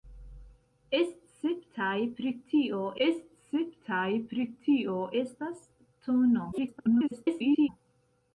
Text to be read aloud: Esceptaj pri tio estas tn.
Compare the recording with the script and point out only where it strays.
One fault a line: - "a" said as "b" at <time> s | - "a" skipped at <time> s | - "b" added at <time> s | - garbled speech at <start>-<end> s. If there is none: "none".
- "esceptaj pri tio" added at 3.1 s
- garbled speech at 6.5-7.7 s